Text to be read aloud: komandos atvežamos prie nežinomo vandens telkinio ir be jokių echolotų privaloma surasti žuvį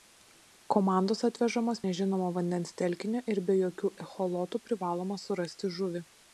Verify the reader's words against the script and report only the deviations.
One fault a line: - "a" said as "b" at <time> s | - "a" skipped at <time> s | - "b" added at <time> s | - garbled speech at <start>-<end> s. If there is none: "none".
- "prie" skipped at 1.8 s